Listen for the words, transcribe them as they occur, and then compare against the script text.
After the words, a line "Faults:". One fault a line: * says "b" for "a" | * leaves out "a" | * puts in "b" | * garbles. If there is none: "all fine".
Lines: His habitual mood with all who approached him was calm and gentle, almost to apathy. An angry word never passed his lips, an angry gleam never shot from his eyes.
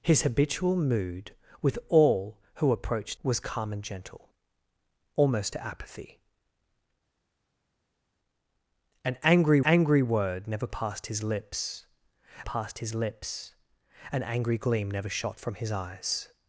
His habitual mood with all who approached was calm and gentle, almost to apathy. An angry angry word never passed his lips passed his lips, an angry gleam never shot from his eyes.
Faults:
* leaves out "him"
* puts in "angry"
* puts in "passed his lips"